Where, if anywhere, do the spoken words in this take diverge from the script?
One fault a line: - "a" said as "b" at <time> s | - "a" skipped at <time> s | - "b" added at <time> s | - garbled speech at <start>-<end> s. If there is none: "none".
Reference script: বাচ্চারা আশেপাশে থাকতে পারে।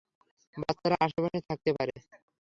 none